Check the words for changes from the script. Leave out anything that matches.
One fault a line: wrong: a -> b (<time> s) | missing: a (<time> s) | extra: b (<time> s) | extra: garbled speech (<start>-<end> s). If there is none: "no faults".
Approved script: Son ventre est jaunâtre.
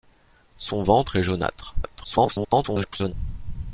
extra: garbled speech (1.8-3.1 s)